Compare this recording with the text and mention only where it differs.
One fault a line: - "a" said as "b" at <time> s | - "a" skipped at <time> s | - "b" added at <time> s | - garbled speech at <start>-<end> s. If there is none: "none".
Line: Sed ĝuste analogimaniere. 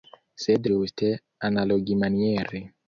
none